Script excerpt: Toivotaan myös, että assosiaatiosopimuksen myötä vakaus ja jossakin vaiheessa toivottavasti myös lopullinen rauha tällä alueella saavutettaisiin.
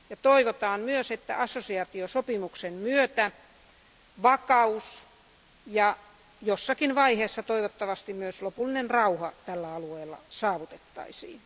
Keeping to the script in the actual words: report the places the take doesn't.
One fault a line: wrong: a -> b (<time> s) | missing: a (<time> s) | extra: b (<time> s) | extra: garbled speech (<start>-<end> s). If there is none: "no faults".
no faults